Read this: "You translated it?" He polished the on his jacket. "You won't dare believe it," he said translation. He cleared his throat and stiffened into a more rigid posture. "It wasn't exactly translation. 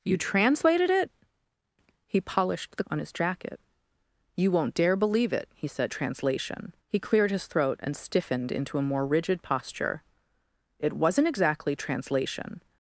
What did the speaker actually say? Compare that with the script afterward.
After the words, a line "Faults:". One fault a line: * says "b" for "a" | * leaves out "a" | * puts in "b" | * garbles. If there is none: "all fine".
"You translated it?" He polished the on his jacket. "You won't dare believe it," he said translation. He cleared his throat and stiffened into a more rigid posture. "It wasn't exactly translation.
Faults:
all fine